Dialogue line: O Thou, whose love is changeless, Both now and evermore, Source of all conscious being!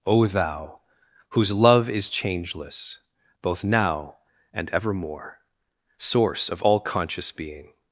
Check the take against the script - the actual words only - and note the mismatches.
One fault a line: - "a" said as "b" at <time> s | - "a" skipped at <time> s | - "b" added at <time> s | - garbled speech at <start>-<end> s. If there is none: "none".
none